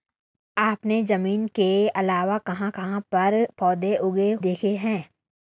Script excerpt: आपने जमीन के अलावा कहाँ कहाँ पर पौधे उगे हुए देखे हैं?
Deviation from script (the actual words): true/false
true